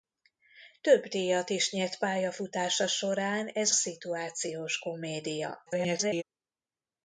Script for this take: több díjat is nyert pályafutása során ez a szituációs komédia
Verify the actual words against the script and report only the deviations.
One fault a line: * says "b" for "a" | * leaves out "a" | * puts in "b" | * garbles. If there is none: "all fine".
* leaves out "a"
* garbles